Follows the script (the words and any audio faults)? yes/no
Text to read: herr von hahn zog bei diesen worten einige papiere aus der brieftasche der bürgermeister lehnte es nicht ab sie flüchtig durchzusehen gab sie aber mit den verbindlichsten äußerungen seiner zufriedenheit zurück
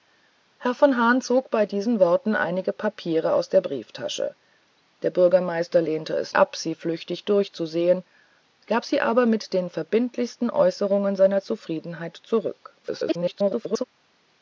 no